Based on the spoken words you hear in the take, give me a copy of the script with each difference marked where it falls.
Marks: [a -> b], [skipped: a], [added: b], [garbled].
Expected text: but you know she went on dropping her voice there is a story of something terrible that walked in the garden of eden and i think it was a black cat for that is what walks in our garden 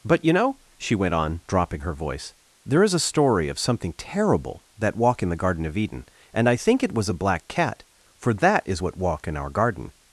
but you know she went on dropping her voice there is a story of something terrible that [walked -> walk] in the garden of eden and i think it was a black cat for that is what [walks -> walk] in our garden